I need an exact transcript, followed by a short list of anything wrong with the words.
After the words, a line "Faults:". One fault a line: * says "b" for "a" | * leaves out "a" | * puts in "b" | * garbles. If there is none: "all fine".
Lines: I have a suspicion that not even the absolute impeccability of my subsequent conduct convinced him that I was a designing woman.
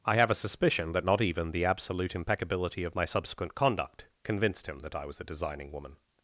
I have a suspicion that not even the absolute impeccability of my subsequent conduct convinced him that I was a designing woman.
Faults:
all fine